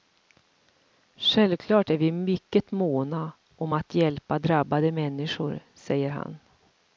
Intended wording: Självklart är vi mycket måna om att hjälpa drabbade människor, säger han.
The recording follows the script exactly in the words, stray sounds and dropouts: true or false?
true